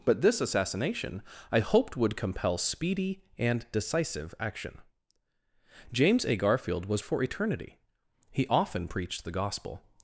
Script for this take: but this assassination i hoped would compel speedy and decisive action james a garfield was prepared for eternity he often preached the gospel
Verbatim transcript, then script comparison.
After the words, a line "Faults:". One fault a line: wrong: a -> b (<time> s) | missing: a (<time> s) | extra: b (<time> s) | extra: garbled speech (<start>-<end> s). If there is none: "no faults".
but this assassination i hoped would compel speedy and decisive action james a garfield was for eternity he often preached the gospel
Faults:
missing: prepared (7.0 s)